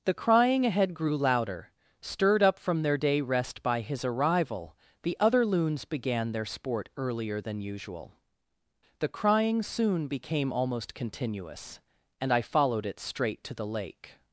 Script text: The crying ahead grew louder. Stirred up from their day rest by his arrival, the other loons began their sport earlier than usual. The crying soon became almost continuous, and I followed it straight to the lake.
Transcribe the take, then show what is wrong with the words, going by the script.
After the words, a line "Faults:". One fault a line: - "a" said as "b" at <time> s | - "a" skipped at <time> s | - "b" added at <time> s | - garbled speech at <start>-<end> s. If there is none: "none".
The crying ahead grew louder. Stirred up from their day rest by his arrival, the other loons began their sport earlier than usual. The crying soon became almost continuous, and I followed it straight to the lake.
Faults:
none